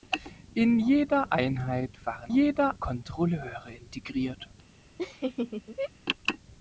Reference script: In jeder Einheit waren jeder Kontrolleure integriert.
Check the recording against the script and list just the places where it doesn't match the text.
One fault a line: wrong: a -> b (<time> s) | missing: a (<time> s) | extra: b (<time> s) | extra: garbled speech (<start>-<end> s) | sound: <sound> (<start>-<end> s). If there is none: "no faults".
sound: laugh (5.0-5.9 s)